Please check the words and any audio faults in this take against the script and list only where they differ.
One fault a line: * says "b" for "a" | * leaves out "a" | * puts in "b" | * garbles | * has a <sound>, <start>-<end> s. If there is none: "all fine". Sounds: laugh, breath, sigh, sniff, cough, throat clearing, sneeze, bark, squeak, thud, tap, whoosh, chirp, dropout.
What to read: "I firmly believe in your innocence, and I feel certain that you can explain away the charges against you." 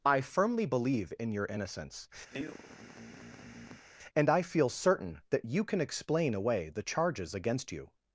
* has a sigh, 2.3-3.9 s